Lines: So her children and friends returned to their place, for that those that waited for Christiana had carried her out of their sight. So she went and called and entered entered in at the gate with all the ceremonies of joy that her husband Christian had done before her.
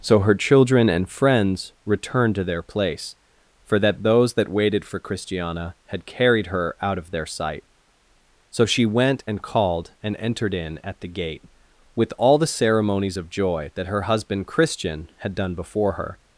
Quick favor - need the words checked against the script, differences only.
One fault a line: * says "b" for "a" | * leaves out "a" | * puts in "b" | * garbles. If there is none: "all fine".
* leaves out "entered"